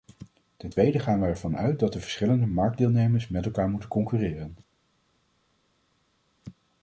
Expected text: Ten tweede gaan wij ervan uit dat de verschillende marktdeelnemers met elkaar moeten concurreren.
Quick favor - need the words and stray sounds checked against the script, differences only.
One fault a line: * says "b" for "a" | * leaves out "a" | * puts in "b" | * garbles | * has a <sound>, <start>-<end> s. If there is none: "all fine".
all fine